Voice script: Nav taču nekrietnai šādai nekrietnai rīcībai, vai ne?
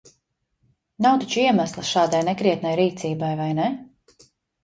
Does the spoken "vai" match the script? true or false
true